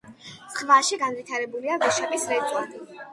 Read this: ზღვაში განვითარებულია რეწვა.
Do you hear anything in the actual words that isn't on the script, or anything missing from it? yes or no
yes